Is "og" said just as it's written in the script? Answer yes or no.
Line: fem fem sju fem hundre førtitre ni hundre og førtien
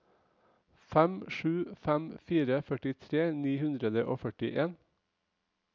yes